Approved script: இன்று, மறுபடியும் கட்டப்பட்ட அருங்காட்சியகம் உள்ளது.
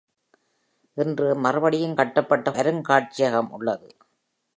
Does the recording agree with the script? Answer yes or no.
yes